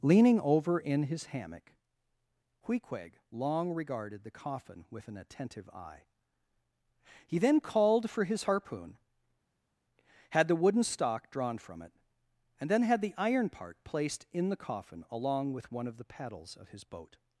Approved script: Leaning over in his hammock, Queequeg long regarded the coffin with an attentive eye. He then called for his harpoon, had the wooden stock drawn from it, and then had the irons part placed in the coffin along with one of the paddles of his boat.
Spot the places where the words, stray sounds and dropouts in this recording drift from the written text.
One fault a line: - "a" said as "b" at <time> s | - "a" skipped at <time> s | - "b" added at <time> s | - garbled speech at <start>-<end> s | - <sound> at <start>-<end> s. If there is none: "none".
- "irons" said as "iron" at 13.2 s